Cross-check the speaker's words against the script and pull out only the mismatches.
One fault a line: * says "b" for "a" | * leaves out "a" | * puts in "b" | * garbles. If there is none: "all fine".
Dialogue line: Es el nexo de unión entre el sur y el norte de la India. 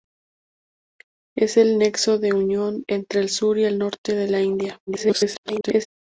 * garbles